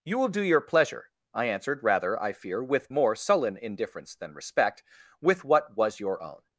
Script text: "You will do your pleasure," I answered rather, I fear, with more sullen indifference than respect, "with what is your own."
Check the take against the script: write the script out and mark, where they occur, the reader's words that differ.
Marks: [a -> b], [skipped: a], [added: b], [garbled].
"You will do your pleasure," I answered rather, I fear, with more sullen indifference than respect, "with what [is -> was] your own."